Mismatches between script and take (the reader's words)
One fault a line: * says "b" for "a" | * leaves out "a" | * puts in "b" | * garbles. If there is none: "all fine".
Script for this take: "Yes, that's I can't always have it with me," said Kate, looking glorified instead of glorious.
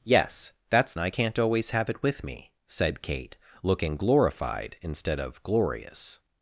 all fine